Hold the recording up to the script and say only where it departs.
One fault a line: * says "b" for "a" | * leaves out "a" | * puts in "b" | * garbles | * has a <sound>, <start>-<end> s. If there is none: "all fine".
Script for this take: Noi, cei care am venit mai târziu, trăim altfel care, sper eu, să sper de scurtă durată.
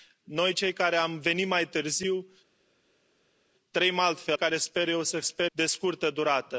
all fine